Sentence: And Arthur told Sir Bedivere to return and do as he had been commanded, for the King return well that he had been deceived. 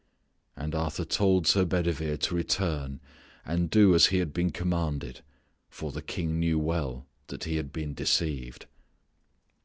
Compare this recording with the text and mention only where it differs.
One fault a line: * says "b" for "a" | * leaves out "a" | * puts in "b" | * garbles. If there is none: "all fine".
* says "knew" for "return"